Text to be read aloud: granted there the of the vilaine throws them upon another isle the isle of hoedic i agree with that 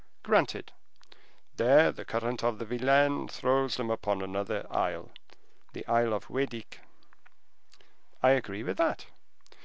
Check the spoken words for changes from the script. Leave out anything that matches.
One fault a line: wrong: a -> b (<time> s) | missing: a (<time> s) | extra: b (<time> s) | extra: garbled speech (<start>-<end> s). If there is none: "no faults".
extra: current (2.0 s)